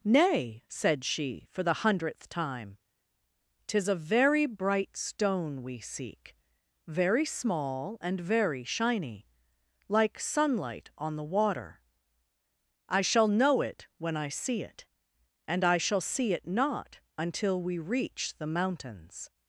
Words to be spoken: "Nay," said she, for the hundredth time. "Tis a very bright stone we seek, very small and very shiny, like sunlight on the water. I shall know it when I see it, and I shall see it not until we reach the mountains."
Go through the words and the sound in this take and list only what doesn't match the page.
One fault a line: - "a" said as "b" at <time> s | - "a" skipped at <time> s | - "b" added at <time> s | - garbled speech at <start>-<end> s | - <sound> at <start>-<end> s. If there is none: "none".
none